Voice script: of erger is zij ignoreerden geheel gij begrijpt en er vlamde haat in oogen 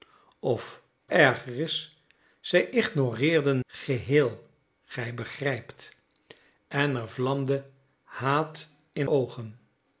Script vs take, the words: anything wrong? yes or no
no